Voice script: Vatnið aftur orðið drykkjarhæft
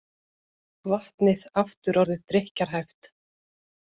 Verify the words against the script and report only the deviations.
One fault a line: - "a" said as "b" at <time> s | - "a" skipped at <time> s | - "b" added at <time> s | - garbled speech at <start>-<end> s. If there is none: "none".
none